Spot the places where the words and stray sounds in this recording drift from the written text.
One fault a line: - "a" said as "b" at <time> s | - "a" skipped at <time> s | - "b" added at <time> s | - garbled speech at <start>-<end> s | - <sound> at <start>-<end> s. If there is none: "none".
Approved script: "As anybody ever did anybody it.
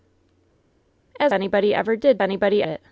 none